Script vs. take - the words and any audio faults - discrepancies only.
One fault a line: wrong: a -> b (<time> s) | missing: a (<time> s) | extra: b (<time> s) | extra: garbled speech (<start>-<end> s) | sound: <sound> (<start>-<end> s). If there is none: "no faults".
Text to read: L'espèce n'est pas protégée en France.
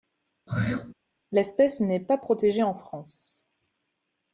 sound: throat clearing (0.5-0.9 s)